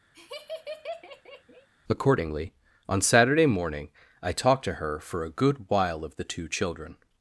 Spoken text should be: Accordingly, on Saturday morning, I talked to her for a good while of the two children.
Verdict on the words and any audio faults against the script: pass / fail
fail